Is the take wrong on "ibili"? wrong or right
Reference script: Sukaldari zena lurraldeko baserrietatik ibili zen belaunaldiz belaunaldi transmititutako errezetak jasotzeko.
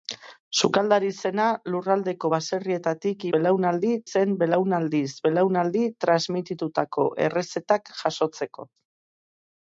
wrong